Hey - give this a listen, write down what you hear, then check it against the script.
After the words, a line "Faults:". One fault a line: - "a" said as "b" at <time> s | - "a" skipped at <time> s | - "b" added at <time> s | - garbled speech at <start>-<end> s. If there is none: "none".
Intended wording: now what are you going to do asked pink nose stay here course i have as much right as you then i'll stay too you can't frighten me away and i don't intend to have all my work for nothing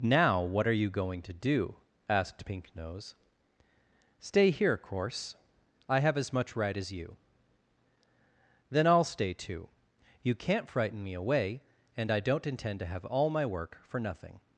now what are you going to do asked pink nose stay here course i have as much right as you then i'll stay too you can't frighten me away and i don't intend to have all my work for nothing
Faults:
none